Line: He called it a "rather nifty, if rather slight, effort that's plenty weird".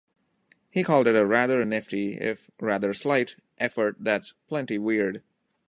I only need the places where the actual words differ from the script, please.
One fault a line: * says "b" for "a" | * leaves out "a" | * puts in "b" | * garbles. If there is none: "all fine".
all fine